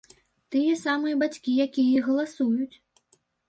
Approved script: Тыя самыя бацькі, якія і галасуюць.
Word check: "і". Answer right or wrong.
right